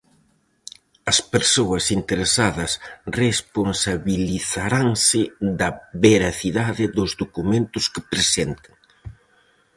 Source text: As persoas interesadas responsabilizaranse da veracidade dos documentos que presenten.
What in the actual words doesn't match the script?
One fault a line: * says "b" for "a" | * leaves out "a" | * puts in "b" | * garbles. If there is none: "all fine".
all fine